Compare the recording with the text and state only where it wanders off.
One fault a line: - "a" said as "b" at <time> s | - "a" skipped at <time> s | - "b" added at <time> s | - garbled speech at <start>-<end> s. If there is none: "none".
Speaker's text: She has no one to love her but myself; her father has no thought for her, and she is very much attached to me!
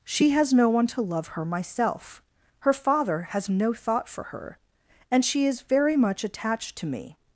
- "but" skipped at 1.4 s